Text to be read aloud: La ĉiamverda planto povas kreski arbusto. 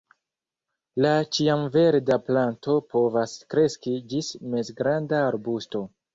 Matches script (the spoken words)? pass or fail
fail